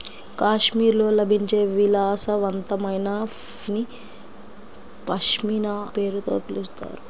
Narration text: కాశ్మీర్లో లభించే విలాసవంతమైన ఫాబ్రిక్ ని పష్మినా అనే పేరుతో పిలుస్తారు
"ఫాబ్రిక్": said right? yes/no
no